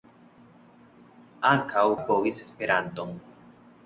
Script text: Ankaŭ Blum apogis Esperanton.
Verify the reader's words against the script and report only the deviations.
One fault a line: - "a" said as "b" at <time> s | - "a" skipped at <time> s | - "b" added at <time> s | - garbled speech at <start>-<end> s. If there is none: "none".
- "Blum" skipped at 1.9 s